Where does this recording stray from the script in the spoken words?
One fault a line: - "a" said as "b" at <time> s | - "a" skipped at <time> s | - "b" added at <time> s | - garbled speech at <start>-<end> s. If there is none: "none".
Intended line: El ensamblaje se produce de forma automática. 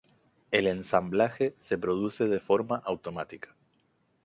none